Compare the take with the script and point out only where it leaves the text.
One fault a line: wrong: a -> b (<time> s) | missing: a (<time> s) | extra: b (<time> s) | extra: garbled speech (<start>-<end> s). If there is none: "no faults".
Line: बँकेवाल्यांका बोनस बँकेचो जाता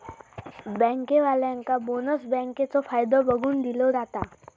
extra: फायदो बघून दिलो (2.9 s)